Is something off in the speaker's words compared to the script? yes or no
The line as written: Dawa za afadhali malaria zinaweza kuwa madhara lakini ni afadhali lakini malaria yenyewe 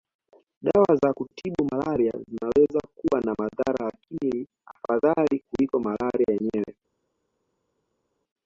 yes